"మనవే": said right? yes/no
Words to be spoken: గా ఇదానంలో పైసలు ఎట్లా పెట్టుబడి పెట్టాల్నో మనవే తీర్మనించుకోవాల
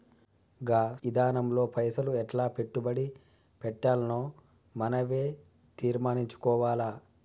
yes